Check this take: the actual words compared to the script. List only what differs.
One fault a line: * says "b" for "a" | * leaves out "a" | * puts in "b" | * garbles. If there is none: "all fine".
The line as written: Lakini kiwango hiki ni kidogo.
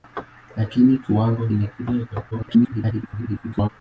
* leaves out "hiki"
* garbles